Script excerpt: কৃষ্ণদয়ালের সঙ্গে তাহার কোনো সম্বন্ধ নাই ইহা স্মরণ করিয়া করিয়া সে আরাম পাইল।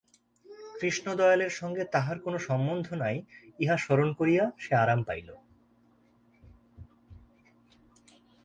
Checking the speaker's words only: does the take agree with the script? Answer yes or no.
no